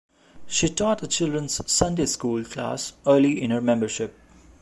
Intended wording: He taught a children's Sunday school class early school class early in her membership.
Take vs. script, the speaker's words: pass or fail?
fail